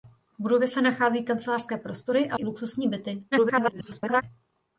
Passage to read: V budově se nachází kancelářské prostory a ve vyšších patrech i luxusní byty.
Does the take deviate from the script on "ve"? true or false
true